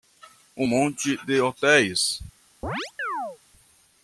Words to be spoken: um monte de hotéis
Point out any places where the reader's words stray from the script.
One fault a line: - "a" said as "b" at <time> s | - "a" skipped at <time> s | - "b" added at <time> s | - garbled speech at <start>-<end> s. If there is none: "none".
none